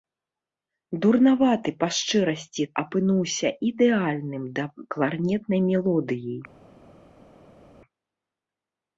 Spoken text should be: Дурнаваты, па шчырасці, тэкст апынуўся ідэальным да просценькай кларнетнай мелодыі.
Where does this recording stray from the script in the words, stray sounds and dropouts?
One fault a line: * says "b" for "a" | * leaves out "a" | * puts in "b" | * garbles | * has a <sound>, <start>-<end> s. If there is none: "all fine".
* leaves out "тэкст"
* leaves out "просценькай"